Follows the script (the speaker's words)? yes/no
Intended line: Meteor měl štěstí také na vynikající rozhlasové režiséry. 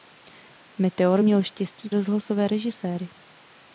no